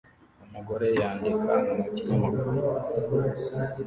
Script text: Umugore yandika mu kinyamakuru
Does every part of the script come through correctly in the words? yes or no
yes